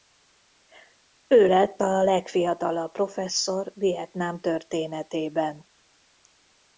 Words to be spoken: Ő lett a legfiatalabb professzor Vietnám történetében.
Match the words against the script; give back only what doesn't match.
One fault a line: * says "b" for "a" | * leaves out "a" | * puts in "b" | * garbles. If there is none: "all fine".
all fine